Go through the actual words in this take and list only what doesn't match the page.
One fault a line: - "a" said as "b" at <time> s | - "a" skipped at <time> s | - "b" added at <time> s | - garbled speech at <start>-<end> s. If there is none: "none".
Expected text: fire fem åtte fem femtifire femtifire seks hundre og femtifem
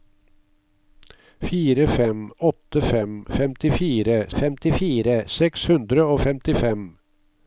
none